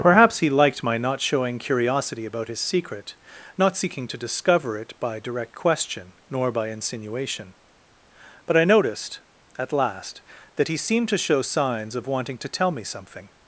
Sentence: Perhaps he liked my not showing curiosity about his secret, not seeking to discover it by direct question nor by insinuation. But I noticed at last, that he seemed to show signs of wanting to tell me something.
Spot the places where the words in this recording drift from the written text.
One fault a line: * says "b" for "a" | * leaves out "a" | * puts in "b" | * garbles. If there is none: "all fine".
all fine